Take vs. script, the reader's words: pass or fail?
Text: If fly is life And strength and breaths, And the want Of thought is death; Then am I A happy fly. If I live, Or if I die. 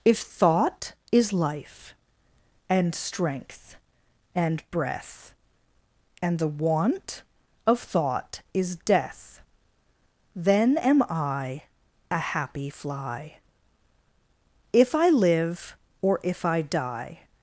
fail